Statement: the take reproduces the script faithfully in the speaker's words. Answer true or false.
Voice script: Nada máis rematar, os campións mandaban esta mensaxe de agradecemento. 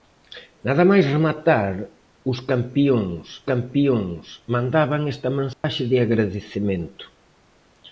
false